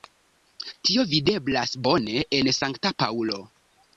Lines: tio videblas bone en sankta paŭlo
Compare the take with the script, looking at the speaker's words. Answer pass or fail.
pass